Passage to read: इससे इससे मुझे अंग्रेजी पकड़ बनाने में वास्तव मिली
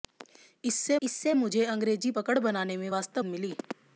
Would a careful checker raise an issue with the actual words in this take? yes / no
no